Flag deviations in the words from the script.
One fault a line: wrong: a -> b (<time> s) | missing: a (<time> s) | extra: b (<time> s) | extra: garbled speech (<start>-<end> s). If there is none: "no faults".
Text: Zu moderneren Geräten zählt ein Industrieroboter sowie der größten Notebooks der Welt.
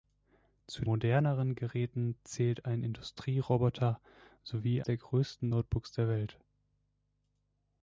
no faults